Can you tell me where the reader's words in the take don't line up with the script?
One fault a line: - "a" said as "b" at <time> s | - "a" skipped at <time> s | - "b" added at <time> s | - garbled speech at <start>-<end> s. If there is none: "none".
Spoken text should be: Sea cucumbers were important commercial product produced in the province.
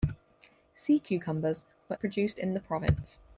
- "important commercial product" skipped at 1.9 s